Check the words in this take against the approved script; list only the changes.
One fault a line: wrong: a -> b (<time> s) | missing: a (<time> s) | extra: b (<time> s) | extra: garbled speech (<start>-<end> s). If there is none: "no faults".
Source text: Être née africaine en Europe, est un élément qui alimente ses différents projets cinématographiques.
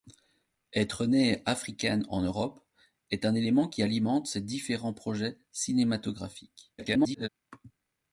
extra: garbled speech (6.8-7.3 s)